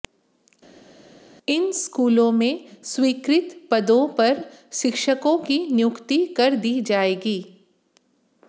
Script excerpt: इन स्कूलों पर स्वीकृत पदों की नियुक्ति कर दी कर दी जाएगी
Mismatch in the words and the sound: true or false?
true